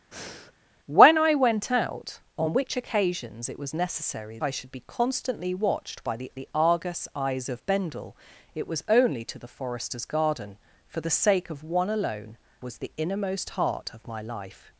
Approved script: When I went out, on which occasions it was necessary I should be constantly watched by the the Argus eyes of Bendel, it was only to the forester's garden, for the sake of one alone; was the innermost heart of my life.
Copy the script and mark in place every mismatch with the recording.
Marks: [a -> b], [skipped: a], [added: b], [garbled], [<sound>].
[breath] When I went out, on which occasions it was necessary I should be constantly watched by the the Argus eyes of Bendel, it was only to the forester's garden, for the sake of one alone; was the innermost heart of my life.